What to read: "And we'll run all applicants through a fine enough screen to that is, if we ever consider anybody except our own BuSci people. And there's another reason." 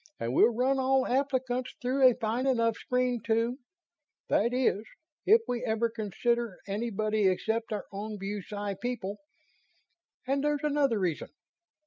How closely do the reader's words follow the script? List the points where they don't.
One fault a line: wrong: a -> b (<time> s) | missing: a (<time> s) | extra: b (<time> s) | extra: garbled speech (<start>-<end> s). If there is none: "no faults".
no faults